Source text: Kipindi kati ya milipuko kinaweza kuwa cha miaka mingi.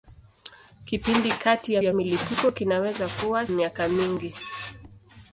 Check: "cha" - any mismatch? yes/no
yes